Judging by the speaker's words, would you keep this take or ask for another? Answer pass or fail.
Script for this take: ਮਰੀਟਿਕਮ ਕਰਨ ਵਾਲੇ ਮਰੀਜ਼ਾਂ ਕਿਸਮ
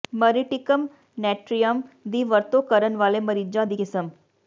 fail